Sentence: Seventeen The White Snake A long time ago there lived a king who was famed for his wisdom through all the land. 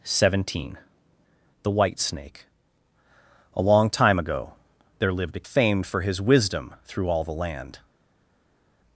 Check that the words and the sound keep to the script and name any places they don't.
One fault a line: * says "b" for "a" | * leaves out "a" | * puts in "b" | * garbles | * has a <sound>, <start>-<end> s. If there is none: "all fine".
* leaves out "king who was"